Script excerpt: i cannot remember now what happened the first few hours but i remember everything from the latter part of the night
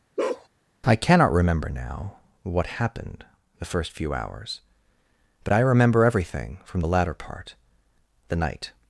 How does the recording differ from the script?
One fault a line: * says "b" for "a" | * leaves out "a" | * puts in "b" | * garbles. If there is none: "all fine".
* leaves out "of"